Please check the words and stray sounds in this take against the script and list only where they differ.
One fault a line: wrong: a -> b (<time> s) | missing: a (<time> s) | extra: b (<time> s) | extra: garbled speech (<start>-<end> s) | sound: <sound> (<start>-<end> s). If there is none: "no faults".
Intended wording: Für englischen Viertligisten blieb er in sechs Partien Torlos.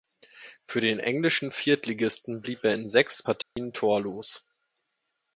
extra: den (0.8 s)
sound: dropout (3.4-3.6 s)